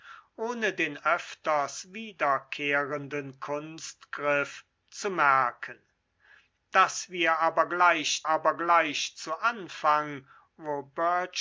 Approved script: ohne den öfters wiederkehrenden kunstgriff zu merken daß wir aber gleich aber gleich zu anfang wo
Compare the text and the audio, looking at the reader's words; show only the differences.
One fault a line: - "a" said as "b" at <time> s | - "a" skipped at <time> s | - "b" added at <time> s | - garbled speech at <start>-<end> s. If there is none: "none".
none